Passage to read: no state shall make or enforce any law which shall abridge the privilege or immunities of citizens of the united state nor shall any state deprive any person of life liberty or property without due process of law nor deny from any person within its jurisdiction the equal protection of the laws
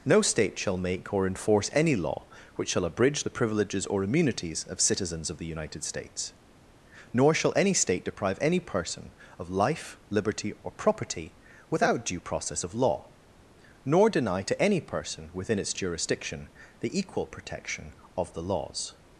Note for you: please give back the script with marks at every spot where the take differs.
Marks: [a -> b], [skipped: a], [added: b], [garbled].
no state shall make or enforce any law which shall abridge the [privilege -> privileges] or immunities of citizens of the united [state -> states] nor shall any state deprive any person of life liberty or property without due process of law nor deny [from -> to] any person within its jurisdiction the equal protection of the laws